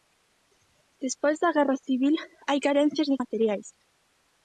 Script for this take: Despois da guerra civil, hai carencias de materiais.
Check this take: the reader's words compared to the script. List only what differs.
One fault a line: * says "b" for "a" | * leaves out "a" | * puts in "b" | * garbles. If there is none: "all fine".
all fine